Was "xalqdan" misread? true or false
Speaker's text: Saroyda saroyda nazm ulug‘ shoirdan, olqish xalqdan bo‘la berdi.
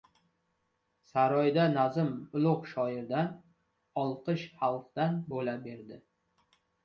false